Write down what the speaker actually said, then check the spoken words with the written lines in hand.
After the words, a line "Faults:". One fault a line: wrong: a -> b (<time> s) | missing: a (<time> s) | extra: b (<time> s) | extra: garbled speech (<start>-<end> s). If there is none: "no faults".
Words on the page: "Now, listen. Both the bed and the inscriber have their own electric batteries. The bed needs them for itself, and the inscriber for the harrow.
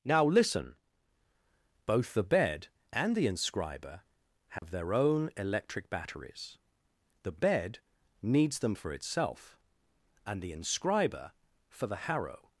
"Now, listen. Both the bed and the inscriber have their own electric batteries. The bed needs them for itself, and the inscriber for the harrow.
Faults:
no faults